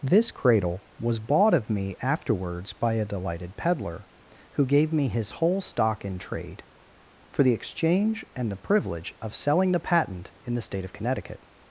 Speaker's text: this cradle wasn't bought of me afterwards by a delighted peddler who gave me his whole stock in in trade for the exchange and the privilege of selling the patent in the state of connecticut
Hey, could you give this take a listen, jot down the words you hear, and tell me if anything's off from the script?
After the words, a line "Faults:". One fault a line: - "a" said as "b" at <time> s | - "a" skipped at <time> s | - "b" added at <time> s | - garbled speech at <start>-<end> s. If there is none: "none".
this cradle was bought of me afterwards by a delighted peddler who gave me his whole stock in trade for the exchange and the privilege of selling the patent in the state of connecticut
Faults:
- "wasn't" said as "was" at 1.0 s
- "in" skipped at 6.2 s